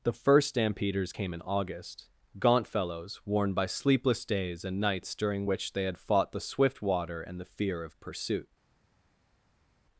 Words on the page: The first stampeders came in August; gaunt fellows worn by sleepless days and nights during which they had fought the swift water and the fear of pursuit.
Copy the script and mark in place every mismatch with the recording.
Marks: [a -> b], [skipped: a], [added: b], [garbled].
The first stampeders came in August; gaunt fellows worn by sleepless days and nights during which they had fought the swift water and the fear of pursuit.